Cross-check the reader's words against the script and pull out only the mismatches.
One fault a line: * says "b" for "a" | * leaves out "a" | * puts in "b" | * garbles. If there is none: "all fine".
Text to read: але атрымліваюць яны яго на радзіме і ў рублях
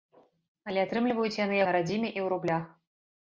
* leaves out "яго"